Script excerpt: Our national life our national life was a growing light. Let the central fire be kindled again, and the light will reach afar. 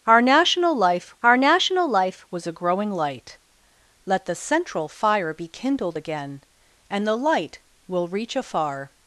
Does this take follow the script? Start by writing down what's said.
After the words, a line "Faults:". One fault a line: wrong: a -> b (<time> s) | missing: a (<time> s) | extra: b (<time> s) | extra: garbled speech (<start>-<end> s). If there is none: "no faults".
Our national life our national life was a growing light. Let the central fire be kindled again, and the light will reach afar.
Faults:
no faults